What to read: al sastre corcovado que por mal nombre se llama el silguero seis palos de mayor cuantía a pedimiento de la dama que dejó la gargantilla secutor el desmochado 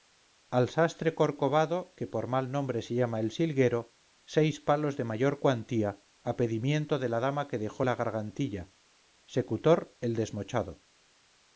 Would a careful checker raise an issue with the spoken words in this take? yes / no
no